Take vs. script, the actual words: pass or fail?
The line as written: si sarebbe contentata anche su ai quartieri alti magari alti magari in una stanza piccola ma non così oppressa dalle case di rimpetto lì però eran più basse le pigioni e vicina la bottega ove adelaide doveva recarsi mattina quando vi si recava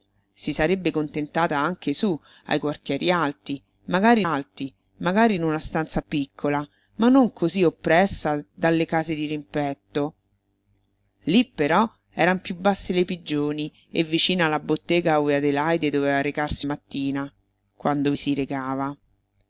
pass